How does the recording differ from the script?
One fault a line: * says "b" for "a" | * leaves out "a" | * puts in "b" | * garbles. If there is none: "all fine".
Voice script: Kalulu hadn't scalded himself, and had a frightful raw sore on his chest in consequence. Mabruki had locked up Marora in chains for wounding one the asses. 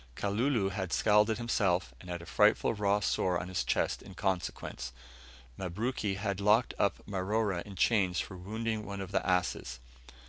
* says "had" for "hadn't"
* puts in "of"